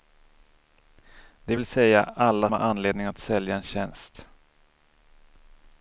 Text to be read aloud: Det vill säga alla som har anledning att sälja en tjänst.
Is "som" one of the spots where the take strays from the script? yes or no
yes